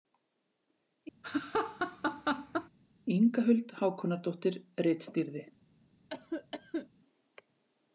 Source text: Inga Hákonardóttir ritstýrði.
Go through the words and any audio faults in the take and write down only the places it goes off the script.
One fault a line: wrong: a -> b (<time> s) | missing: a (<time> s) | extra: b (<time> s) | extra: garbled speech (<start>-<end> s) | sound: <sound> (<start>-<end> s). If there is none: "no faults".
sound: laugh (1.2-2.7 s)
extra: Huld (3.5 s)
sound: cough (6.1-6.9 s)